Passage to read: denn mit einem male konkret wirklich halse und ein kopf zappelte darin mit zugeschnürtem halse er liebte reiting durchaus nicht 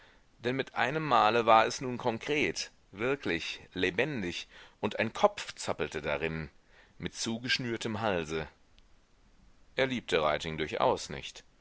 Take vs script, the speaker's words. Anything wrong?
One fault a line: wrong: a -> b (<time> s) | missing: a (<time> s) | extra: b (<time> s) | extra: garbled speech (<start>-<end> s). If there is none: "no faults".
extra: war es nun (1.4 s)
wrong: halse -> lebendig (3.7 s)